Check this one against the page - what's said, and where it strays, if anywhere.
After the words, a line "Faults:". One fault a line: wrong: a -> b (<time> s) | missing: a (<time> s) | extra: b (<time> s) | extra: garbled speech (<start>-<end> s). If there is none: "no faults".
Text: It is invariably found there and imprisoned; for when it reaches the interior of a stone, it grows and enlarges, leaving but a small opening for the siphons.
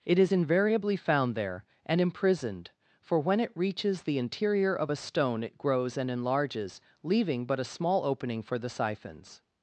It is invariably found there and imprisoned; for when it reaches the interior of a stone, it grows and enlarges, leaving but a small opening for the siphons.
Faults:
no faults